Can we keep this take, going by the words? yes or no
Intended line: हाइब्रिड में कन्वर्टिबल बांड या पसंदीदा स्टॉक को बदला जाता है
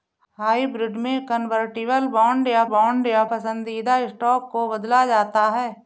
no